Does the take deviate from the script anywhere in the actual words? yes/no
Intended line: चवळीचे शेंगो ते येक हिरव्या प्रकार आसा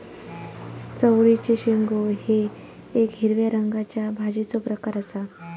yes